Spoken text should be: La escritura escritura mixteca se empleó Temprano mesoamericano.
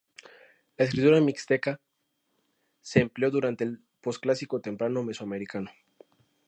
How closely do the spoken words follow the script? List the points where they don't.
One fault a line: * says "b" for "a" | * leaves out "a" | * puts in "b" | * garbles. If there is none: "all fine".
* leaves out "escritura"
* puts in "durante el Posclásico"